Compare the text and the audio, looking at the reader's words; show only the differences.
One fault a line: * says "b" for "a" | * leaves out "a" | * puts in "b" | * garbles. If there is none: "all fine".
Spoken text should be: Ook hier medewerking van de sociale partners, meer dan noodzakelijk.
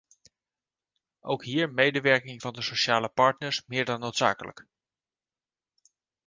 all fine